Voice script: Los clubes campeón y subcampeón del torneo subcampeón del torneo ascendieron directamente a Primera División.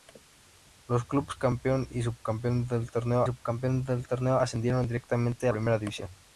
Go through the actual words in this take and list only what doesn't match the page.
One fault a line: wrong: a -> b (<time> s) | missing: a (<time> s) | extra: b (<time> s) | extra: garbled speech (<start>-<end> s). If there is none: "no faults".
no faults